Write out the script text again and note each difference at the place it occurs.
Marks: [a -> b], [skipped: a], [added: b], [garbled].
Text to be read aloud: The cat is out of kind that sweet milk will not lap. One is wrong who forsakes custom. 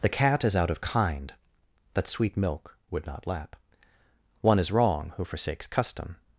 The cat is out of kind that sweet milk [will -> would] not lap. One is wrong who forsakes custom.